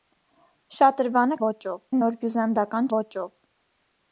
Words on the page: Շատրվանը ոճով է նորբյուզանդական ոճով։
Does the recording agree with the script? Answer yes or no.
yes